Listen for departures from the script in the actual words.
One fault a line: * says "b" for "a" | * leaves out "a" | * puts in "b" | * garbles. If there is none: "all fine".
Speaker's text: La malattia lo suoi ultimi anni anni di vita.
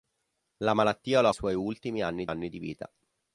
all fine